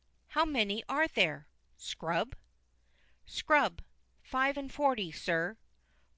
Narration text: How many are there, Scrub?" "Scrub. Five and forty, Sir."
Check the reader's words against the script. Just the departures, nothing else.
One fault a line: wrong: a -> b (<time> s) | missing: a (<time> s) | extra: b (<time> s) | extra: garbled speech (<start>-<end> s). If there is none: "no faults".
no faults